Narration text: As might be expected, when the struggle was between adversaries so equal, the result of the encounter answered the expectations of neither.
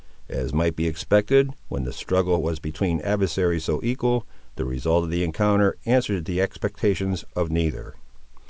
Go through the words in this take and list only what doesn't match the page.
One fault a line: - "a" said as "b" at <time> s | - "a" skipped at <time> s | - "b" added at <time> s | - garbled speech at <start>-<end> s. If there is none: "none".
none